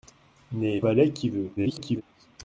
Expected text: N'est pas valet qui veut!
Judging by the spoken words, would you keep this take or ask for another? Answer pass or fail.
fail